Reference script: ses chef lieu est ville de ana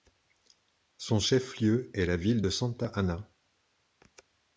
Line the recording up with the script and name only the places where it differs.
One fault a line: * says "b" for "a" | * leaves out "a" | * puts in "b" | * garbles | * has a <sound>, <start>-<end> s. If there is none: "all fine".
* says "son" for "ses"
* puts in "la"
* puts in "santa"